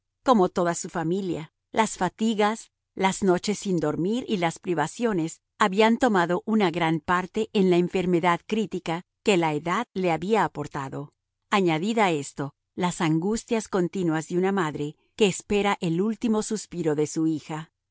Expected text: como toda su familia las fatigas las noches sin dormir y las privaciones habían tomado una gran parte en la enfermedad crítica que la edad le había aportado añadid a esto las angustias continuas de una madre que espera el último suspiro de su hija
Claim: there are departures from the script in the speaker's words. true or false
false